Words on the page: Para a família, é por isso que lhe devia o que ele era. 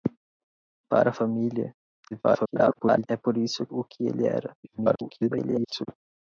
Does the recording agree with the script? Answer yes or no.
no